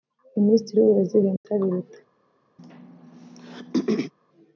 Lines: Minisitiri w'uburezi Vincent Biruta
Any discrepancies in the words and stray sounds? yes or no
yes